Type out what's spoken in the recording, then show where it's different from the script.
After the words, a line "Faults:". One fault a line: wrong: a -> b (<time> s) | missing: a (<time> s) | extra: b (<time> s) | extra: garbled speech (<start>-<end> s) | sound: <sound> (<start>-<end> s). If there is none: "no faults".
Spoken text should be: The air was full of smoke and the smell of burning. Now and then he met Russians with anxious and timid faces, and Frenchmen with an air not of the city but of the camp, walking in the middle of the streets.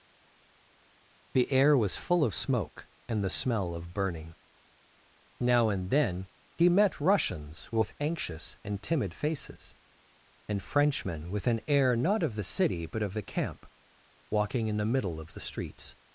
The air was full of smoke and the smell of burning. Now and then he met Russians with anxious and timid faces, and Frenchmen with an air not of the city but of the camp, walking in the middle of the streets.
Faults:
no faults